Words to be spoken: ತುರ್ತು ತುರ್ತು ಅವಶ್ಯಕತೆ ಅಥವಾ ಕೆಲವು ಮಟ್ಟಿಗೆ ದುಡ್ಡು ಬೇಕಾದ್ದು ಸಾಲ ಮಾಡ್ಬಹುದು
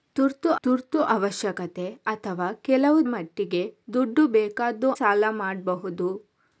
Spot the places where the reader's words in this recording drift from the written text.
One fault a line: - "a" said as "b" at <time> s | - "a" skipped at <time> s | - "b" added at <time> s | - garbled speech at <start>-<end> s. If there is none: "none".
none